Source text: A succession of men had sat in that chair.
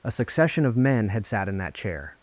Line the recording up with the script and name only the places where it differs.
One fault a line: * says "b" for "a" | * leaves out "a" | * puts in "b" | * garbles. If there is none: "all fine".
all fine